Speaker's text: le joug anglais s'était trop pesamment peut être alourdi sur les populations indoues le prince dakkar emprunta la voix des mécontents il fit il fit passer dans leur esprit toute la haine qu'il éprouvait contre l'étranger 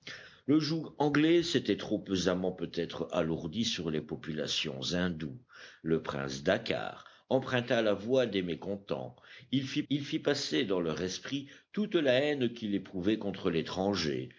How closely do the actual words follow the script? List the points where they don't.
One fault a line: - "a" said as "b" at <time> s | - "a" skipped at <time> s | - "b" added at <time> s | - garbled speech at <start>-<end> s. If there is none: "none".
none